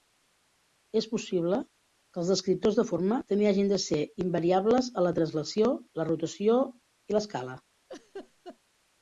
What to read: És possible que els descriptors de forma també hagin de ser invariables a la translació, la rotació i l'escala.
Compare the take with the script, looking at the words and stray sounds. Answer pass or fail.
fail